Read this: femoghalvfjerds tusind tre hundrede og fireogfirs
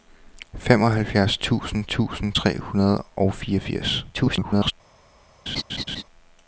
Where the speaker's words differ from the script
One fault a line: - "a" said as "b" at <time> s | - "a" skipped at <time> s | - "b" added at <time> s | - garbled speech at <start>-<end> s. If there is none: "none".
- "tusind" added at 1.8 s
- garbled speech at 4.1-4.7 s